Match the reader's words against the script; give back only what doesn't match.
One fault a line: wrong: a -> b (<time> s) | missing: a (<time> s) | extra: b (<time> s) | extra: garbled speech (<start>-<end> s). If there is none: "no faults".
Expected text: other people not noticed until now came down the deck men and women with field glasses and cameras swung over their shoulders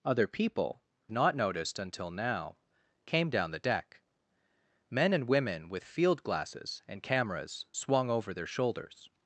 no faults